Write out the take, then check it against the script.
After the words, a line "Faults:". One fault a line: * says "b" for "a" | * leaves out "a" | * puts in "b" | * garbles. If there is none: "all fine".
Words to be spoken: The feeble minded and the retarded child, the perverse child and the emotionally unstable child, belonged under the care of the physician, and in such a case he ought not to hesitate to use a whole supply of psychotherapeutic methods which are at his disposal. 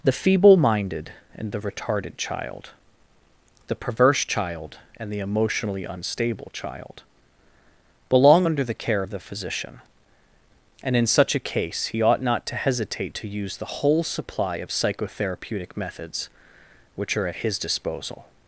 The feeble minded and the retarded child, the perverse child and the emotionally unstable child, belong under the care of the physician, and in such a case he ought not to hesitate to use the whole supply of psychotherapeutic methods which are at his disposal.
Faults:
* says "belong" for "belonged"
* says "the" for "a"